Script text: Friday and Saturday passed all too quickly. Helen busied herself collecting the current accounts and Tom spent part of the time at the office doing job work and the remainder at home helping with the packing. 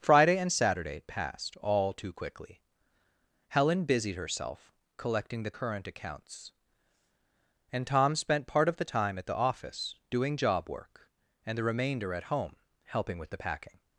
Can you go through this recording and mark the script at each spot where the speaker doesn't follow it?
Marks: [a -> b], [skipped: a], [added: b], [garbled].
Friday and Saturday passed all too quickly. Helen busied herself collecting the current accounts and Tom spent part of the time at the office doing job work and the remainder at home helping with the packing.